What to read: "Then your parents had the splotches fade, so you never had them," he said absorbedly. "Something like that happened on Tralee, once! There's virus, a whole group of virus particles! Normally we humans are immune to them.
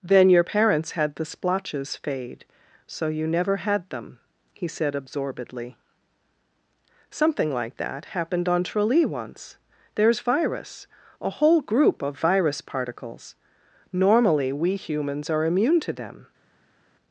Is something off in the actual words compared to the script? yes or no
no